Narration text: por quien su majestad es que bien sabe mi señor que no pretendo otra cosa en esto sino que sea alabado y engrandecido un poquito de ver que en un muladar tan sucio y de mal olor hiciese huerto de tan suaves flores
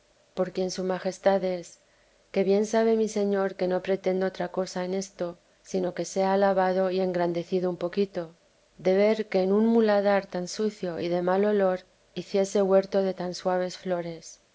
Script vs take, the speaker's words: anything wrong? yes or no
no